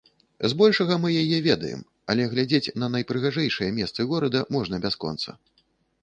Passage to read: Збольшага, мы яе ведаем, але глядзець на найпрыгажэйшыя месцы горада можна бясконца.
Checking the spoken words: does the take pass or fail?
pass